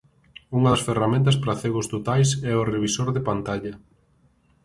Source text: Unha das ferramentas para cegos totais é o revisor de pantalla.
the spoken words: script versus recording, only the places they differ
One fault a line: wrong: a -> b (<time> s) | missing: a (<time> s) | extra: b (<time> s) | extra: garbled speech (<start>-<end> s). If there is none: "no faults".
no faults